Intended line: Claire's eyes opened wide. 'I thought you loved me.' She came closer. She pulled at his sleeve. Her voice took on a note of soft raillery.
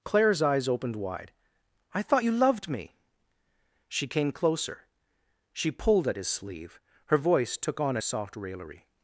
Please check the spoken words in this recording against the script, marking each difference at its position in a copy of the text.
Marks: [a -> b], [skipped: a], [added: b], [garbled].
Claire's eyes opened wide. 'I thought you loved me.' She came closer. She pulled at his sleeve. Her voice took on a [skipped: note of] soft raillery.